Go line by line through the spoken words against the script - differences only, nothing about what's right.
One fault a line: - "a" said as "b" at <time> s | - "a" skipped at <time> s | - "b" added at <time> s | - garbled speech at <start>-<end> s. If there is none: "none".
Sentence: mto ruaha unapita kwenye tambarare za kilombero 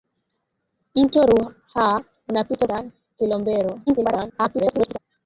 - "kwenye tambarare" skipped at 2.7 s
- garbled speech at 3.9-5.0 s